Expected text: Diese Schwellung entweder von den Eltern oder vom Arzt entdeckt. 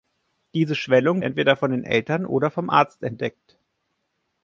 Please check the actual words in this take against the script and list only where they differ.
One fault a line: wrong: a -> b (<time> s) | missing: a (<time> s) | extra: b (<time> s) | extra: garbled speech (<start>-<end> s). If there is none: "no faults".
no faults